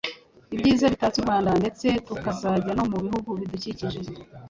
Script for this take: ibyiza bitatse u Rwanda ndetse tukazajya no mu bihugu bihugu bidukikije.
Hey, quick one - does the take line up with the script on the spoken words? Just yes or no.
no